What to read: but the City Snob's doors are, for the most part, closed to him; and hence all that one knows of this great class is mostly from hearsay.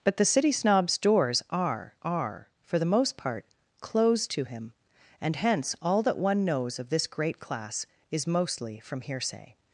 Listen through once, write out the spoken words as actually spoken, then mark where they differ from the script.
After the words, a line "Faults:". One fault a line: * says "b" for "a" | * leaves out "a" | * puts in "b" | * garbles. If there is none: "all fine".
but the City Snob's doors are are, for the most part, closed to him; and hence all that one knows of this great class is mostly from hearsay.
Faults:
* puts in "are"